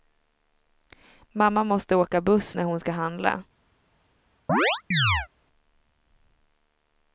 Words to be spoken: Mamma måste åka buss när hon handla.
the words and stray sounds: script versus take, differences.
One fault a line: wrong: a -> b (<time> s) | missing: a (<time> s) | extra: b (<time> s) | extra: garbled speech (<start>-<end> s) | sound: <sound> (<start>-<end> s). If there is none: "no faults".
extra: ska (2.8 s)
sound: chirp (4.5-5.3 s)